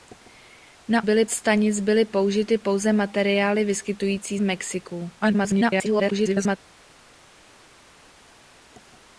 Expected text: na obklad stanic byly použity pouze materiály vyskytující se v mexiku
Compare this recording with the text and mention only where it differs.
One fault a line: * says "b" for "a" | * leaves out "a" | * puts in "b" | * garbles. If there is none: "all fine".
* says "byly" for "obklad"
* leaves out "se"
* garbles